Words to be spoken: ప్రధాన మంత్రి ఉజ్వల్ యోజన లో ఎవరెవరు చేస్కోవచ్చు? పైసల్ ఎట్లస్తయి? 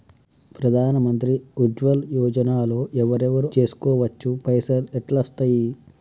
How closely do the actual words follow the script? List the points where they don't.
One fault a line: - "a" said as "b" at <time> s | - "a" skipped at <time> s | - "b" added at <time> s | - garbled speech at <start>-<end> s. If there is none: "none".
none